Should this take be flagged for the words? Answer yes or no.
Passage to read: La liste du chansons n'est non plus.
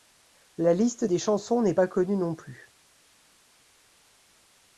yes